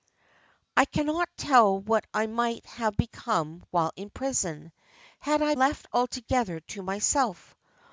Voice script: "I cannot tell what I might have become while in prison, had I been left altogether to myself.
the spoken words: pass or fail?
fail